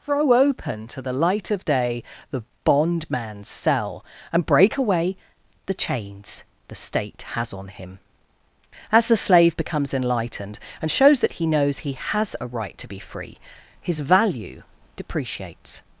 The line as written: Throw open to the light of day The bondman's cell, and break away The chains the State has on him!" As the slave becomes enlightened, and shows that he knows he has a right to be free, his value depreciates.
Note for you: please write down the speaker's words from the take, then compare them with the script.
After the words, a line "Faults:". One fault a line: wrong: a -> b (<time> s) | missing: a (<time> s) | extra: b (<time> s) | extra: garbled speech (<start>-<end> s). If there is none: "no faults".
Throw open to the light of day The bondman's cell, and break away The chains the State has on him!" As the slave becomes enlightened, and shows that he knows he has a right to be free, his value depreciates.
Faults:
no faults